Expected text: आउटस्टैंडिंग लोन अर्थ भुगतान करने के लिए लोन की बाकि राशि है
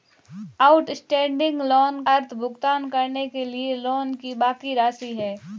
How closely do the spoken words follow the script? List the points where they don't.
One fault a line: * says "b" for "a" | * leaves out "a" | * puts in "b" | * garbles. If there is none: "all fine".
all fine